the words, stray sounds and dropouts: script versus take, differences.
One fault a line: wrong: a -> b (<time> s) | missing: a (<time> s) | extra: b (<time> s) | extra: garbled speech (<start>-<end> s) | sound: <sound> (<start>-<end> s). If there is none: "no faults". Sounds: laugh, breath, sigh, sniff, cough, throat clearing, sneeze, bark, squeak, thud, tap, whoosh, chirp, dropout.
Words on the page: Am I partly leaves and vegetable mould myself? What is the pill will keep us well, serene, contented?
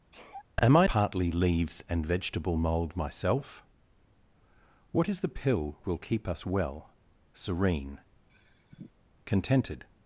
sound: sneeze (0.1-0.4 s)
sound: sigh (8.3-8.9 s)